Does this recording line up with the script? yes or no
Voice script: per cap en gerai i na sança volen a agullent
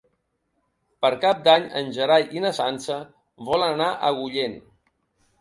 no